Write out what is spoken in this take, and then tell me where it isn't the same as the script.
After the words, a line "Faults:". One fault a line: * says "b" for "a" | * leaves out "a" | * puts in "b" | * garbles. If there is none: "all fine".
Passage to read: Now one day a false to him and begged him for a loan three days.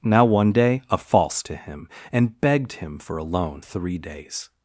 Now one day a false to him and begged him for a loan three days.
Faults:
all fine